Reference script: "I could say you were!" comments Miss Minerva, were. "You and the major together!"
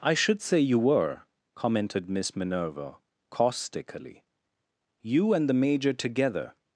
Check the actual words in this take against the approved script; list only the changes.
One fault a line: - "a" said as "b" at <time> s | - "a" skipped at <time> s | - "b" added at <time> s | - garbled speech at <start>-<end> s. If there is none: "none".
- "could" said as "should" at 0.1 s
- "comments" said as "commented" at 1.6 s
- "were" said as "caustically" at 3.3 s